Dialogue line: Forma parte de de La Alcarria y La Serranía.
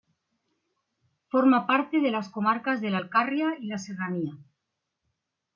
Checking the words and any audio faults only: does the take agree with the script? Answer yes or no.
no